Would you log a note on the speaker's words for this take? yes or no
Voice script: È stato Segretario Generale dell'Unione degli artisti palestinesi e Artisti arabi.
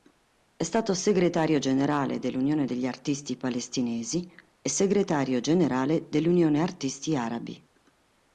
yes